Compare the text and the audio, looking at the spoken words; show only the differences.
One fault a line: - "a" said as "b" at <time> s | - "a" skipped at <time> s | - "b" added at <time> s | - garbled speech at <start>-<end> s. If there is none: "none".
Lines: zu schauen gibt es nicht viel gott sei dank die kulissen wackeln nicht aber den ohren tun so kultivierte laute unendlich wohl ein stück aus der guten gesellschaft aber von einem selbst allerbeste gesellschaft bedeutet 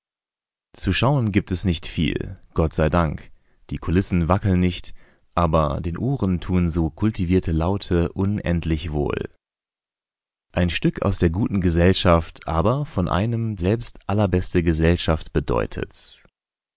none